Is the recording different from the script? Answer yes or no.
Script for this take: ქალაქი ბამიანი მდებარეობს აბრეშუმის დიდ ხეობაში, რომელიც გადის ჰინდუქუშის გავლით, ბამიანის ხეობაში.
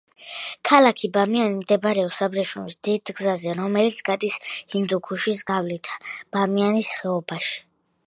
yes